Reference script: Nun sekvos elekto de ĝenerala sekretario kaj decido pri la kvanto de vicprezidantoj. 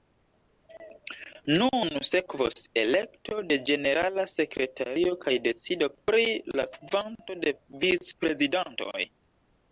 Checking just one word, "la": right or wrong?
right